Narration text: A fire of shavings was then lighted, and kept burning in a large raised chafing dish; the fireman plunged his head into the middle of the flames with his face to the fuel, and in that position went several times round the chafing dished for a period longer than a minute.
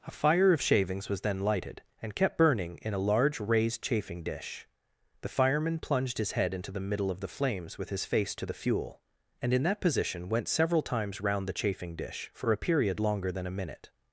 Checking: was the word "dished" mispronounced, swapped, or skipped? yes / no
yes